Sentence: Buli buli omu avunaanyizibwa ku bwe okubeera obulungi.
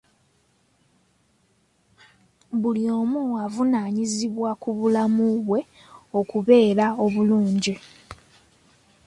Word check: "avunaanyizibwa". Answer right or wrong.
right